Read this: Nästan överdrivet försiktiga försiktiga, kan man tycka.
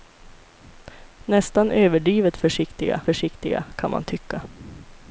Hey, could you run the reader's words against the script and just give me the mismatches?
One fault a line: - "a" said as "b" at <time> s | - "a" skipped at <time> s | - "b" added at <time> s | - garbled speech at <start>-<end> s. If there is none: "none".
none